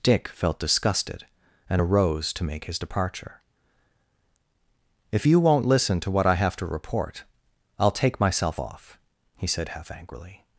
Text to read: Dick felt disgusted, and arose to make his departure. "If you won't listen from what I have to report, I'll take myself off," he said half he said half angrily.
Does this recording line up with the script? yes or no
no